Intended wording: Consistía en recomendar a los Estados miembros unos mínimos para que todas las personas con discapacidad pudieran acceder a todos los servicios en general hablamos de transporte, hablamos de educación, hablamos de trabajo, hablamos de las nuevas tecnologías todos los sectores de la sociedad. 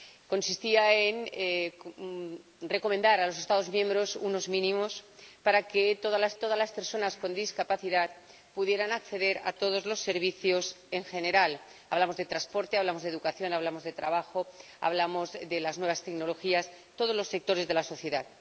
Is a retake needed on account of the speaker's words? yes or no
yes